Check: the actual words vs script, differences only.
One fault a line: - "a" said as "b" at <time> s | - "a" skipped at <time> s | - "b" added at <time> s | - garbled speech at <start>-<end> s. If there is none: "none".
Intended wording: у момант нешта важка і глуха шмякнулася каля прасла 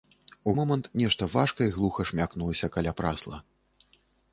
none